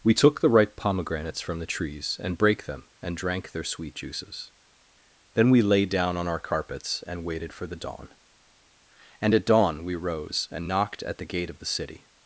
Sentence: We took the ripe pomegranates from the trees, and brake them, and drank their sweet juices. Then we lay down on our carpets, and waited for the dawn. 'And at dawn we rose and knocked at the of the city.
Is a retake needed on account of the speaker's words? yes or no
yes